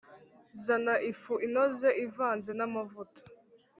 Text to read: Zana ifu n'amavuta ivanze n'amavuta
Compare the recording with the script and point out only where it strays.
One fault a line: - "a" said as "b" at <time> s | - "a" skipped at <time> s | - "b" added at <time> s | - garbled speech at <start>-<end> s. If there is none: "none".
- "n'amavuta" said as "inoze" at 1.5 s